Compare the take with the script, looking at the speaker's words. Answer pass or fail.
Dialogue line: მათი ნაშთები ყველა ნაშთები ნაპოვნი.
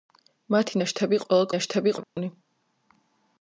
pass